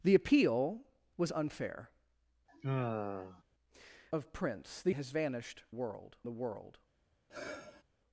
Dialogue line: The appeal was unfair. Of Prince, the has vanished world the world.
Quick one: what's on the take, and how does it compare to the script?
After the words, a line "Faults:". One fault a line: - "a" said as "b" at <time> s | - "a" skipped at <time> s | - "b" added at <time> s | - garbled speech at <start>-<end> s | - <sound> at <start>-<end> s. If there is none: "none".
The appeal was unfair. Of Prince, the has vanished world the world.
Faults:
- sigh at 2.5-3.4 s
- sigh at 7.3-7.8 s